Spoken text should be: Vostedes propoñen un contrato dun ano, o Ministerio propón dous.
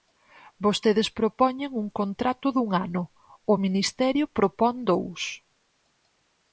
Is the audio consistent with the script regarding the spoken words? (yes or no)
yes